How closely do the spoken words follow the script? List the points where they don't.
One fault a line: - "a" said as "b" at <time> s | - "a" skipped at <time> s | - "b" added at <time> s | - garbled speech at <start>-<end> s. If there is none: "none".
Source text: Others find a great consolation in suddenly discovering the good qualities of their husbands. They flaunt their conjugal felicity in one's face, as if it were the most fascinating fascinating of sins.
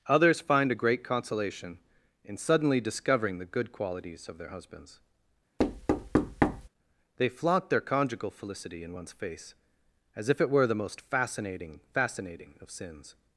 none